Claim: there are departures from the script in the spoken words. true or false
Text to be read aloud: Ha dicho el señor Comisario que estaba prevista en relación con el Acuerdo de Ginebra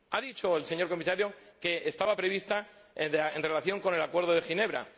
false